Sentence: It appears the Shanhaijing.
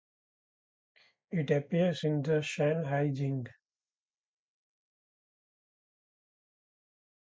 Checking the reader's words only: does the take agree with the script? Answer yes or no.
no